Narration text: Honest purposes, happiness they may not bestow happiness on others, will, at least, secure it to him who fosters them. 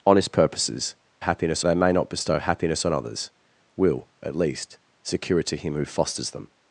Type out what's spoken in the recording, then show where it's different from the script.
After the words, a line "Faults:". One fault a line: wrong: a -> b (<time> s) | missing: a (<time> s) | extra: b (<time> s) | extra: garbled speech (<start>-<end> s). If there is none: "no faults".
Honest purposes, happiness they may not bestow happiness on others, will, at least, secure it to him who fosters them.
Faults:
no faults